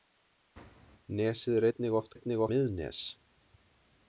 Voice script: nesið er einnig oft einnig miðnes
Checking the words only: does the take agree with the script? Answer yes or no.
yes